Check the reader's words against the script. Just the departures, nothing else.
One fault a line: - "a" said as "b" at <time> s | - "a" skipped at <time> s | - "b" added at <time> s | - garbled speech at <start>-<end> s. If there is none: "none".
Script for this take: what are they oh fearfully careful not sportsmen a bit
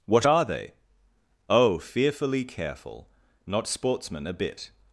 none